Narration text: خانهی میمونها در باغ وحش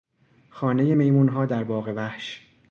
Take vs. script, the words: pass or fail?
pass